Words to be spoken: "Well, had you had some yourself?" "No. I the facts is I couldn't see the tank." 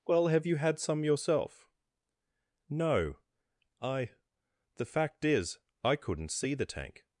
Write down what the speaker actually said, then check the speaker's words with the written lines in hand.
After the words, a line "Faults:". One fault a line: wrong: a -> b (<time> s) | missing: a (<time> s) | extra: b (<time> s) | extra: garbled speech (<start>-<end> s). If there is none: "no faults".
"Well, have you had some yourself?" "No. I the fact is I couldn't see the tank."
Faults:
wrong: had -> have (0.3 s)
wrong: facts -> fact (4.8 s)